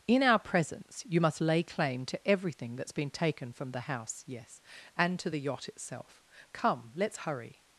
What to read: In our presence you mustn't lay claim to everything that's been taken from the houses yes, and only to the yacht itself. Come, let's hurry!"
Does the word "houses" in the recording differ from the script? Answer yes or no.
yes